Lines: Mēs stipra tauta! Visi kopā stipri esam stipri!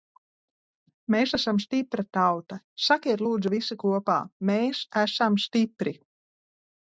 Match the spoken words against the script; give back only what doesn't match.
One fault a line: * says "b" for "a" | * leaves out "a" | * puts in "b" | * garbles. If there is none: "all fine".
* puts in "esam"
* puts in "Sakiet lūdzu"
* says "mēs" for "stipri"